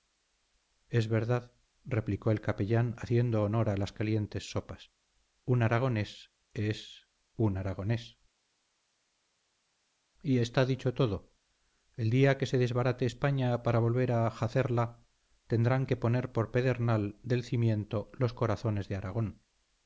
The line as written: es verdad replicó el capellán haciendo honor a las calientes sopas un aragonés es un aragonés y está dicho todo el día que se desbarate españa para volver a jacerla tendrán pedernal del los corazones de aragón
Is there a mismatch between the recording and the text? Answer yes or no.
yes